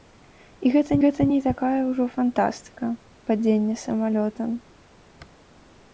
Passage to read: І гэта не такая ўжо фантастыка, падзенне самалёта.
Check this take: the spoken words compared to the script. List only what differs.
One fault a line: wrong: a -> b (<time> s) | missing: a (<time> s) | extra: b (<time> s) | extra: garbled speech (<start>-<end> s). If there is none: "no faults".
extra: гэта (1.0 s)